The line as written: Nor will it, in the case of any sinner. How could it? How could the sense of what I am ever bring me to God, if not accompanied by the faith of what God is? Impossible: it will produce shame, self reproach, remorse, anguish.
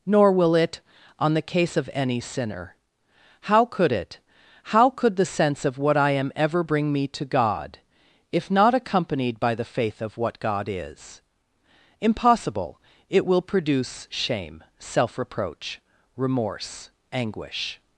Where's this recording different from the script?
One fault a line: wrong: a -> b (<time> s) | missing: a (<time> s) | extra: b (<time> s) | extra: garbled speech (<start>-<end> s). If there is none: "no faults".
wrong: in -> on (1.2 s)